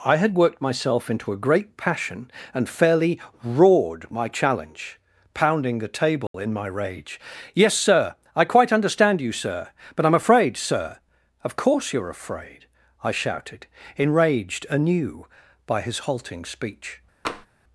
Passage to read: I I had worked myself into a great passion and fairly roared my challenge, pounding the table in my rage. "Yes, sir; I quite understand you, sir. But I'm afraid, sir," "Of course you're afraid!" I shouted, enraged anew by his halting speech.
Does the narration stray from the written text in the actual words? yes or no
yes